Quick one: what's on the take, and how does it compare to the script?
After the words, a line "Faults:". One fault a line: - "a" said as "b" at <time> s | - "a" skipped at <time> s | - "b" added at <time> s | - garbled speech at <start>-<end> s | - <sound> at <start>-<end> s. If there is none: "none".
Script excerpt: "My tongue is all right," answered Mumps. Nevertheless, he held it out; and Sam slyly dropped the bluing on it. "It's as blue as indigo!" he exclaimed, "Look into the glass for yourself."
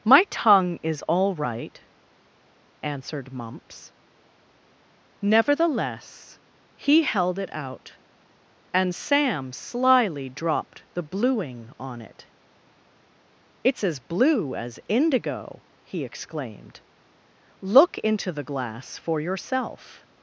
"My tongue is all right," answered Mumps. Nevertheless, he held it out; and Sam slyly dropped the bluing on it. "It's as blue as indigo!" he exclaimed, "Look into the glass for yourself."
Faults:
none